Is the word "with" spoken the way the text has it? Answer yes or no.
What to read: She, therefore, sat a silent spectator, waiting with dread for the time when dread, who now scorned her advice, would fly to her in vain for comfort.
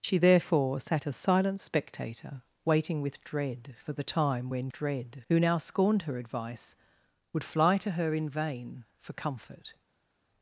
yes